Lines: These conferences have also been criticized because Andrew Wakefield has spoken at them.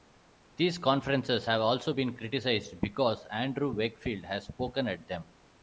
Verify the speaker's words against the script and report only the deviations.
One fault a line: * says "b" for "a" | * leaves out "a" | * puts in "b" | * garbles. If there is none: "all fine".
all fine